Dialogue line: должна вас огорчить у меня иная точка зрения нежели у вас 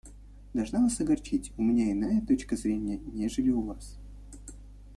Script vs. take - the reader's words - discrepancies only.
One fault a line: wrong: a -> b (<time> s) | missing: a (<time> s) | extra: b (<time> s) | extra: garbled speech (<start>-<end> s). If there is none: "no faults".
no faults